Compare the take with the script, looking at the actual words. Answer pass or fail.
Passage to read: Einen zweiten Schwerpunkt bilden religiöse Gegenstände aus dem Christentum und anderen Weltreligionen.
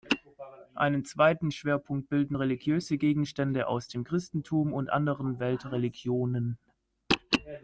pass